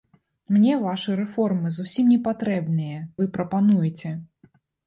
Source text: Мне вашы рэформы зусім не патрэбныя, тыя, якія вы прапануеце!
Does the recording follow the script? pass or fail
fail